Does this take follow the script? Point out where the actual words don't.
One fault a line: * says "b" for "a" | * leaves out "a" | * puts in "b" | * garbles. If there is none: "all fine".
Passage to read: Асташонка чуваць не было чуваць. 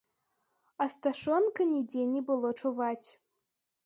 * says "нідзе" for "чуваць"